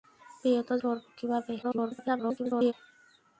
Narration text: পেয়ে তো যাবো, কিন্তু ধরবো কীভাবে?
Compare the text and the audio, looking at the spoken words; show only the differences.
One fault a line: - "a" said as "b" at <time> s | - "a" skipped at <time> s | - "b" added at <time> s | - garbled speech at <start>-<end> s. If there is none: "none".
- "যাবো কিন্তু" skipped at 0.7 s
- garbled speech at 1.6-2.7 s